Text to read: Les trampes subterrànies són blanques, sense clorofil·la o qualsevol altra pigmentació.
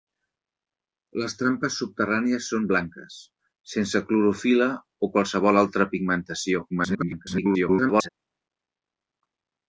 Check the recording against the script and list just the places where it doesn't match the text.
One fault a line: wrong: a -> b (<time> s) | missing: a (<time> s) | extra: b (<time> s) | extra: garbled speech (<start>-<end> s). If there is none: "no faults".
extra: garbled speech (6.7-8.1 s)